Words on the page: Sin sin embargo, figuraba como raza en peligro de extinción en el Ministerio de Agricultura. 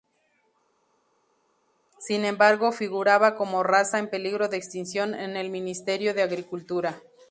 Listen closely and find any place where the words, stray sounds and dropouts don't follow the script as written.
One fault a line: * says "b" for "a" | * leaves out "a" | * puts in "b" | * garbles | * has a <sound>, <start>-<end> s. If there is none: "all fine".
* leaves out "sin"